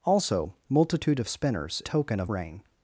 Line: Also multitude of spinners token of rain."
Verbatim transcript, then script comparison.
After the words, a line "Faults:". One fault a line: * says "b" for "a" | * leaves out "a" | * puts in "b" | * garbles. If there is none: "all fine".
Also multitude of spinners token of rain."
Faults:
all fine